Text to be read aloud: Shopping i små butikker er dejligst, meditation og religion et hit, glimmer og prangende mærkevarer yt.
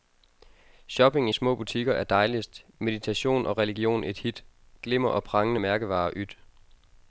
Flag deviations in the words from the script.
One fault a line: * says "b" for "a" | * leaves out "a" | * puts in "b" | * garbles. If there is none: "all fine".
all fine